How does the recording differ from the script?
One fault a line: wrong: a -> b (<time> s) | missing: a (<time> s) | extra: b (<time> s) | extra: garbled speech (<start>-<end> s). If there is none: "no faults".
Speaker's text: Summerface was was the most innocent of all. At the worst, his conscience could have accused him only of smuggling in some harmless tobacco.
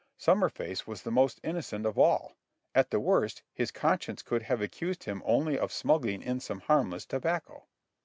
missing: was (1.0 s)